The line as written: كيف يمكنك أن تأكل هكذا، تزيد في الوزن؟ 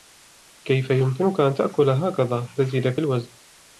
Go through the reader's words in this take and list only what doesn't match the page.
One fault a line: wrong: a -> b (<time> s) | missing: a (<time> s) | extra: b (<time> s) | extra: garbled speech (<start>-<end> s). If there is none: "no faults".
no faults